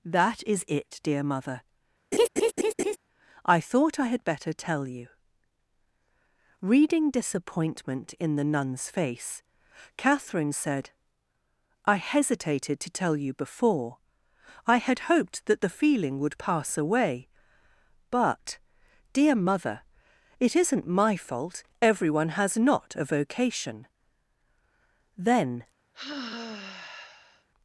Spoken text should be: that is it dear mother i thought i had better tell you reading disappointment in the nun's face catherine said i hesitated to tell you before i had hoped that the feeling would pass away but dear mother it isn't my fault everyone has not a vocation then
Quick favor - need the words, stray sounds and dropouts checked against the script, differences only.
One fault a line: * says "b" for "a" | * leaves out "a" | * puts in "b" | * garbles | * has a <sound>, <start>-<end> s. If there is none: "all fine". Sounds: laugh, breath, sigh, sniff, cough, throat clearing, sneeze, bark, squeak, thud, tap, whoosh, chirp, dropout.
* has a laugh, 2.1-3.0 s
* has a sigh, 25.9-27.5 s